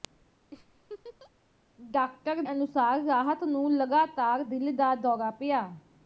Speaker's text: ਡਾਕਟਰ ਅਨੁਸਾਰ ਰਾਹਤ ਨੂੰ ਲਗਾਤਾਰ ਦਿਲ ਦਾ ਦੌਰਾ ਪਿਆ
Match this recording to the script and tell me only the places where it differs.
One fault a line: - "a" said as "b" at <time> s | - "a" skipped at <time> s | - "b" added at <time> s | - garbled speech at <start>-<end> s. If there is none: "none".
none